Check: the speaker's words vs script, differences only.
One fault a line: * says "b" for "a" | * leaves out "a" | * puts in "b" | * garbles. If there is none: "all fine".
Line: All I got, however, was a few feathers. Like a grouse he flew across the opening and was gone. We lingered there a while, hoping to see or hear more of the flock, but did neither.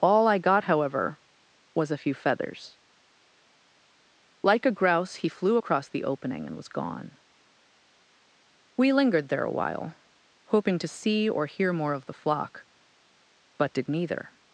all fine